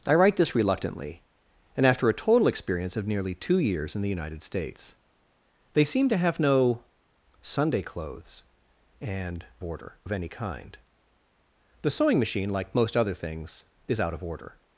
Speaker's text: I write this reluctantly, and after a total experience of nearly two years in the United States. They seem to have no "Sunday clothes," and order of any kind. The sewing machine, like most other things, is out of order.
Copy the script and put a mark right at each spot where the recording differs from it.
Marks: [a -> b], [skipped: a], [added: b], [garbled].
I write this reluctantly, and after a total experience of nearly two years in the United States. They seem to have no "Sunday clothes," and order of any kind. The sewing machine, like most other things, is out of order.